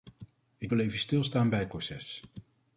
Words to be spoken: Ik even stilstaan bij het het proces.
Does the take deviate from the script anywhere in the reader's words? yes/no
yes